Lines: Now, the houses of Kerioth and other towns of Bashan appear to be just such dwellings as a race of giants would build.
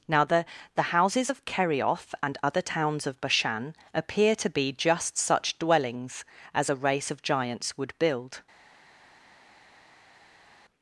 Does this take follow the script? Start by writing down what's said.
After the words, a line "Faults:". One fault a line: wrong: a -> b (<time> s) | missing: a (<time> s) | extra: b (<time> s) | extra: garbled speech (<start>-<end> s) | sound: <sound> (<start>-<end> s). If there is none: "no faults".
Now, the the houses of Kerioth and other towns of Bashan appear to be just such dwellings as a race of giants would build.
Faults:
extra: the (0.7 s)